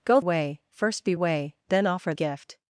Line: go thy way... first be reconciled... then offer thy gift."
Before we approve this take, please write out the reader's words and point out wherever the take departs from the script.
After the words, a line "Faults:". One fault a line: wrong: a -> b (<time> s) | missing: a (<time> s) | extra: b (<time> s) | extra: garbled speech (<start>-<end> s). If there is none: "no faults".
go way... first be way... then offer gift."
Faults:
missing: thy (0.2 s)
wrong: reconciled -> way (1.1 s)
missing: thy (2.1 s)